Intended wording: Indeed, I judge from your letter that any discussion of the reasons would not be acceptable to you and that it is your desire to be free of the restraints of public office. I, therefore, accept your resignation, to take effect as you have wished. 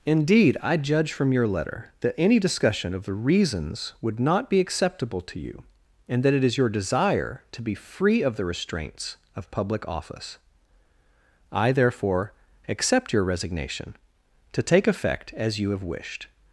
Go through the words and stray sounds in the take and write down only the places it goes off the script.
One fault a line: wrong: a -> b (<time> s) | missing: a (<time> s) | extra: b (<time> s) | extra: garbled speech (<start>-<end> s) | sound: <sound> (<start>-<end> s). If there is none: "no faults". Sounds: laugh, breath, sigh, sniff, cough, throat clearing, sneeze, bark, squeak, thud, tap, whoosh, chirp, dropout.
no faults